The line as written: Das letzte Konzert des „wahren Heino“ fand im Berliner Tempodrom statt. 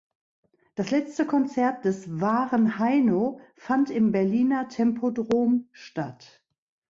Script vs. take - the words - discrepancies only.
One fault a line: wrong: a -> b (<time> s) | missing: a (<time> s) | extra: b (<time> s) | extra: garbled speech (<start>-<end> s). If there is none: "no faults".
no faults